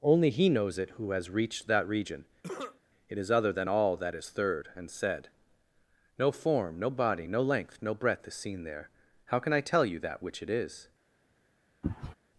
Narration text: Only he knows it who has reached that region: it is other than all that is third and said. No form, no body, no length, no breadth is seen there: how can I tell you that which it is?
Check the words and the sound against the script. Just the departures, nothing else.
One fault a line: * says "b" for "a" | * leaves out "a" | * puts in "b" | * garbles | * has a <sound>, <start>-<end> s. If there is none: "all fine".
* has a cough, 2.4-2.8 s
* has a sneeze, 11.8-12.1 s